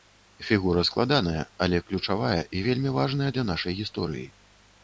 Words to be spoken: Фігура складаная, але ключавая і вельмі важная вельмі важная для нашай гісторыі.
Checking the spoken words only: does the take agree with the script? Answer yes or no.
no